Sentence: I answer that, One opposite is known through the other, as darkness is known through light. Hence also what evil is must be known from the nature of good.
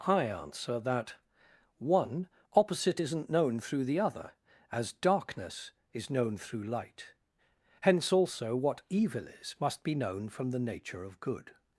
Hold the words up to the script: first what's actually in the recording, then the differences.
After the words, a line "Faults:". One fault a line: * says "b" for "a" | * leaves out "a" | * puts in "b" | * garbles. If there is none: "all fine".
I answer that, One opposite isn't known through the other, as darkness is known through light. Hence also what evil is must be known from the nature of good.
Faults:
* says "isn't" for "is"